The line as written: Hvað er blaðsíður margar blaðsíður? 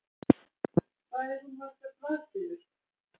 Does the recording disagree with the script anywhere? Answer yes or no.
yes